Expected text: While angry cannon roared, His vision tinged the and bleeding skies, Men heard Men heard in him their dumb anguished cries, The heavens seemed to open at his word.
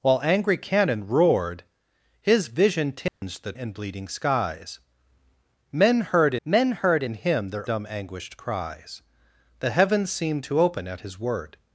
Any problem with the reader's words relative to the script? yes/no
no